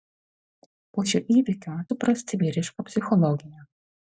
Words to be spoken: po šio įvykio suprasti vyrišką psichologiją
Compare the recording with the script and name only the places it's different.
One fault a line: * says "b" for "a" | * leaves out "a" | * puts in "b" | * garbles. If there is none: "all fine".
all fine